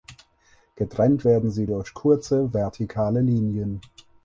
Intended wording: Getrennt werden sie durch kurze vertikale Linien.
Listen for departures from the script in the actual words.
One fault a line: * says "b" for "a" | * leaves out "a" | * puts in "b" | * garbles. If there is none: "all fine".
all fine